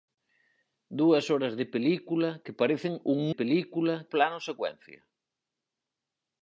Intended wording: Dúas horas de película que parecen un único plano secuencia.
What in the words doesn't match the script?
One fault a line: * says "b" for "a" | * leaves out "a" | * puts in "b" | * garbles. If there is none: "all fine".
* says "película" for "único"